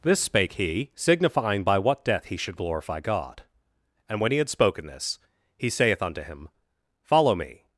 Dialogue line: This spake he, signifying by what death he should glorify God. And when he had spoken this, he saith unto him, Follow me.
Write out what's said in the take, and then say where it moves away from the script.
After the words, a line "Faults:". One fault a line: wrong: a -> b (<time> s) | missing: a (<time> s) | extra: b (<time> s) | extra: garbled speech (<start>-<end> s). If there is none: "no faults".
This spake he, signifying by what death he should glorify God. And when he had spoken this, he saith unto him, Follow me.
Faults:
no faults